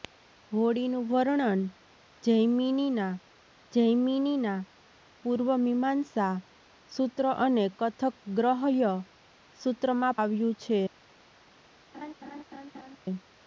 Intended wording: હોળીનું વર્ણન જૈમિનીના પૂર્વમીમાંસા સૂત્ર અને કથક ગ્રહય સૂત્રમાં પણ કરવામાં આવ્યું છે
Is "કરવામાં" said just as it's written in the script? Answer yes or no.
no